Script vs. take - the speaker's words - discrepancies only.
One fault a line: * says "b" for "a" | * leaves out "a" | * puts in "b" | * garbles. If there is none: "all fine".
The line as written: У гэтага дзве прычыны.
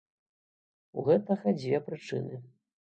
all fine